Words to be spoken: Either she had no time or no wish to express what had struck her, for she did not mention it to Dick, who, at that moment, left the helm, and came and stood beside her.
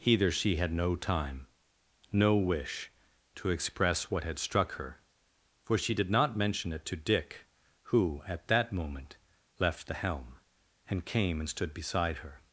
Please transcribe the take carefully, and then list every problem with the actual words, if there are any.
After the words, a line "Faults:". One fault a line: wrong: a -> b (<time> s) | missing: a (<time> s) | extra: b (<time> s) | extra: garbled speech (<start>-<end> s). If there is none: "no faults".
Either she had no time no wish to express what had struck her, for she did not mention it to Dick, who, at that moment, left the helm, and came and stood beside her.
Faults:
missing: or (1.5 s)